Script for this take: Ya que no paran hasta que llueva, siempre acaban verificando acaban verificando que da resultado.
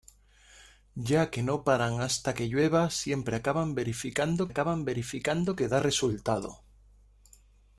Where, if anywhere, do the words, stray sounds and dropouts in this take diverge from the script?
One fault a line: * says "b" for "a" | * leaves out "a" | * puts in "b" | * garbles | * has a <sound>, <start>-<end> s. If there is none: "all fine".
all fine